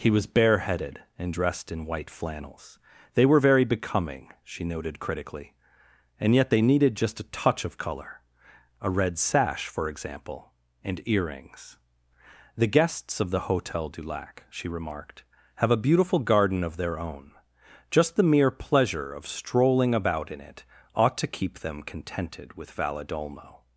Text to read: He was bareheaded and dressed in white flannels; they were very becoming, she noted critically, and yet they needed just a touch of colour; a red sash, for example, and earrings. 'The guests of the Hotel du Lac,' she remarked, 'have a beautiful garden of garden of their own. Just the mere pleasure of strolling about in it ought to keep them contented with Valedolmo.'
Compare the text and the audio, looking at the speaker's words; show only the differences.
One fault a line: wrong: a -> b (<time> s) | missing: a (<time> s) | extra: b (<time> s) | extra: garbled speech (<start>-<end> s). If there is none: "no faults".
missing: garden of (16.8 s)